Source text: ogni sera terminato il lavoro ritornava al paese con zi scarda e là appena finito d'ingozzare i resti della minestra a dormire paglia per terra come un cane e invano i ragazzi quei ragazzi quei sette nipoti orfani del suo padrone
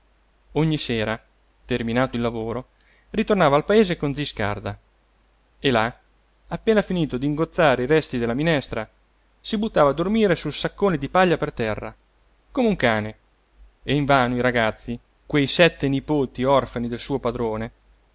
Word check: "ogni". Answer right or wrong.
right